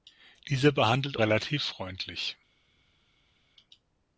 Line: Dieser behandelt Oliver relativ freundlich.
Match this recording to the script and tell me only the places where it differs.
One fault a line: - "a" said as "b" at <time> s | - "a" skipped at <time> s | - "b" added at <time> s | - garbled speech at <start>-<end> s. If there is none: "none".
- "Oliver" skipped at 1.2 s